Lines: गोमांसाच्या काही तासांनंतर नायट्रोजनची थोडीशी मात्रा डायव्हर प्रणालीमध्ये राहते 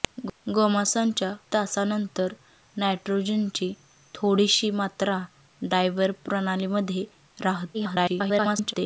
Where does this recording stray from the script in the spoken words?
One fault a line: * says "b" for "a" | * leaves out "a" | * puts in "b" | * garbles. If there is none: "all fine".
* leaves out "काही"
* garbles